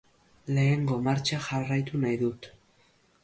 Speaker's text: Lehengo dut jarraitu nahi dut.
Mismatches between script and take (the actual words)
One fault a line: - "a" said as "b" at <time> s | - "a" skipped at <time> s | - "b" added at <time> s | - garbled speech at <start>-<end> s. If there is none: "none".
- "dut" said as "martxa" at 1.1 s